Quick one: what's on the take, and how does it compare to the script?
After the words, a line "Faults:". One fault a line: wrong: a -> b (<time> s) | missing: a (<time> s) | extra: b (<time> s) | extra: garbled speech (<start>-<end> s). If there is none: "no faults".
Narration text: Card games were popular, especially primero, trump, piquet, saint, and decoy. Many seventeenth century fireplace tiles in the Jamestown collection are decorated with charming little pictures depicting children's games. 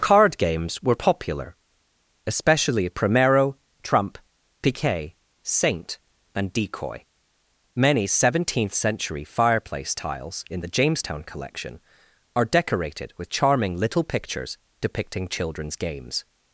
Card games were popular, especially primero, trump, piquet, saint, and decoy. Many seventeenth century fireplace tiles in the Jamestown collection are decorated with charming little pictures depicting children's games.
Faults:
no faults